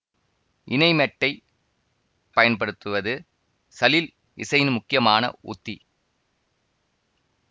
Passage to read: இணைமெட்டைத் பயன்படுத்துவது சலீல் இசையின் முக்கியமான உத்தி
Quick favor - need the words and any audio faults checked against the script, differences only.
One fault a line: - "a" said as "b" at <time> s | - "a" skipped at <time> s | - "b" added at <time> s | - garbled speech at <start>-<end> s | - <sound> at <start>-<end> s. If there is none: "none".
none